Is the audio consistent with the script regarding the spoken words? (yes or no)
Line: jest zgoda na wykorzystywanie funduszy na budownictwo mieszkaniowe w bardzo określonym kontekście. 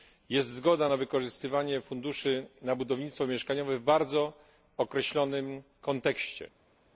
yes